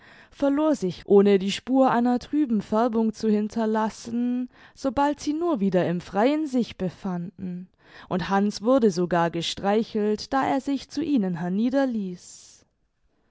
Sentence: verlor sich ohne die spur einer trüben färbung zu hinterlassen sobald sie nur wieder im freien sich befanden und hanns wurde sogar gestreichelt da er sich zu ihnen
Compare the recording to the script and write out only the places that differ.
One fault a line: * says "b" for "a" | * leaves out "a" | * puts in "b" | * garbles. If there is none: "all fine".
all fine